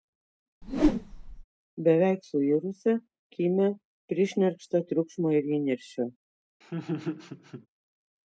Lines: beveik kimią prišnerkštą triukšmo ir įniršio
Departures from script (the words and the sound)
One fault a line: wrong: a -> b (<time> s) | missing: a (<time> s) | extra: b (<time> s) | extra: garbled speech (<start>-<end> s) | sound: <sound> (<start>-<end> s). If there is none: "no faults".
sound: whoosh (0.6-1.4 s)
extra: suirusią (2.3 s)
sound: laugh (6.6-7.7 s)